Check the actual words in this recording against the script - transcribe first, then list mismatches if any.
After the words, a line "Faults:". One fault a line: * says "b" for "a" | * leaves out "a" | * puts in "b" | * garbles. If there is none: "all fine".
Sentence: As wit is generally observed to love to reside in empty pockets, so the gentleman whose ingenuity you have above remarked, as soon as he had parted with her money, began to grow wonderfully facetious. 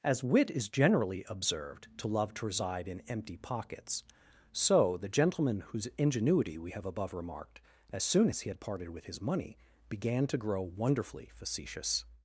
As wit is generally observed to love to reside in empty pockets, so the gentleman whose ingenuity we have above remarked, as soon as he had parted with his money, began to grow wonderfully facetious.
Faults:
* says "we" for "you"
* says "his" for "her"